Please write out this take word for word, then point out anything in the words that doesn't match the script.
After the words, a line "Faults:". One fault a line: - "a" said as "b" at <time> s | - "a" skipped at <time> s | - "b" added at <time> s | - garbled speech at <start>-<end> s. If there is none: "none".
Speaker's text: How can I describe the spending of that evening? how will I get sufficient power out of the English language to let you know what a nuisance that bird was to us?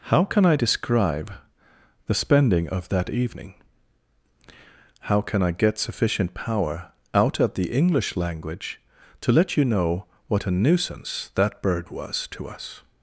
How can I describe the spending of that evening? how can I get sufficient power out of the English language to let you know what a nuisance that bird was to us?
Faults:
- "will" said as "can" at 5.2 s